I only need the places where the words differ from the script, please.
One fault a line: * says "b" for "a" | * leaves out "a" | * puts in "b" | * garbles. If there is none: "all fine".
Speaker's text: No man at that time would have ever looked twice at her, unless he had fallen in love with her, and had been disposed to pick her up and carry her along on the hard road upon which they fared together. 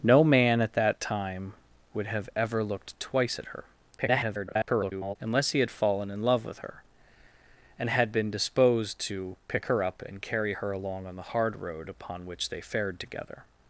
* garbles